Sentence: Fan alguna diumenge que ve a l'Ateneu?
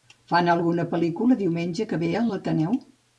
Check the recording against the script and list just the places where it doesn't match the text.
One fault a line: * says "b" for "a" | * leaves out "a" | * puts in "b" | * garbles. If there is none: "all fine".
* puts in "pel·lícula"